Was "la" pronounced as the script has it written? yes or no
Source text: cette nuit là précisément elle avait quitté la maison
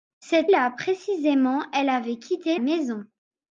no